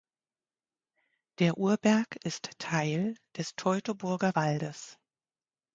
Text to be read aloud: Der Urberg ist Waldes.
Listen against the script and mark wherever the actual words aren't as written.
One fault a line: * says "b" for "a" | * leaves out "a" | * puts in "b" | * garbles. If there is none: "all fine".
* puts in "Teil des Teutoburger"